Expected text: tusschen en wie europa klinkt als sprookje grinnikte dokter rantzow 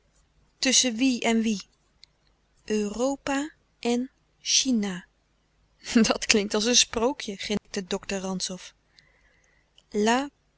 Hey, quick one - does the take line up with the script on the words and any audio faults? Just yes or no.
no